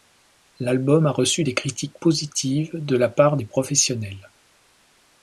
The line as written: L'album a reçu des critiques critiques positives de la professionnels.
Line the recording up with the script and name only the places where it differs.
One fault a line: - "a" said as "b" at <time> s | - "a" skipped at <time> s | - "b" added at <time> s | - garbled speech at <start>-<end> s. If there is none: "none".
- "critiques" skipped at 2.0 s
- "part des" added at 3.1 s